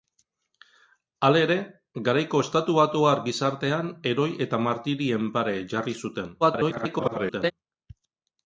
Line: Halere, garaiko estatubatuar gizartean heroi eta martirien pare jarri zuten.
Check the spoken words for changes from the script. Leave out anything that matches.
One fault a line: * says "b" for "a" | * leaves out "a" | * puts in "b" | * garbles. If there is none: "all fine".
* garbles